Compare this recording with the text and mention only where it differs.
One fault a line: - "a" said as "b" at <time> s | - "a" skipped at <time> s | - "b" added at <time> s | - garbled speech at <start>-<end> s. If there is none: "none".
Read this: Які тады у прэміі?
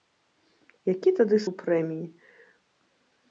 none